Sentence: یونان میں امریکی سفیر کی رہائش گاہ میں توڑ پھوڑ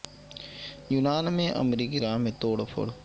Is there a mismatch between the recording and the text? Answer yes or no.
yes